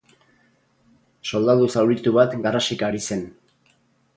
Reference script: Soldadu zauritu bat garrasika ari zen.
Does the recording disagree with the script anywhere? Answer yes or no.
no